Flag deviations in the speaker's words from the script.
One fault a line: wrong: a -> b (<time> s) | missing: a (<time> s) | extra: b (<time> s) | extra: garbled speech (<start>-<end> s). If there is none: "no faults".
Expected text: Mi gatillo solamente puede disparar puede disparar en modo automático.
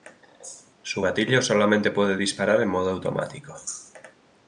wrong: Mi -> Su (0.8 s)
missing: puede disparar (2.6 s)